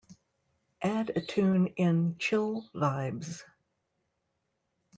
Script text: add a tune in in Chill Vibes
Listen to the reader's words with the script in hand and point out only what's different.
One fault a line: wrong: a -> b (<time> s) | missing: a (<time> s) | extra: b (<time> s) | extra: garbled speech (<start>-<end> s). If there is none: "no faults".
missing: in (2.2 s)